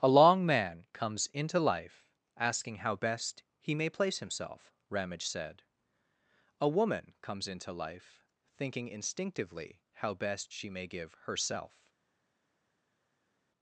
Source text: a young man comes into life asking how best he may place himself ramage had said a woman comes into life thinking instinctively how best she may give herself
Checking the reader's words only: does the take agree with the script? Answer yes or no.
no